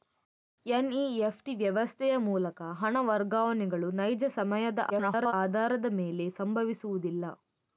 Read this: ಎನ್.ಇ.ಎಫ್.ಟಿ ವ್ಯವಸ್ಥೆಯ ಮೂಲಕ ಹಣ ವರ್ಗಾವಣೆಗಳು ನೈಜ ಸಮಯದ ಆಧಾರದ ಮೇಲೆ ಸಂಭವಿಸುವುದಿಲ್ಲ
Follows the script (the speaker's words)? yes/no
no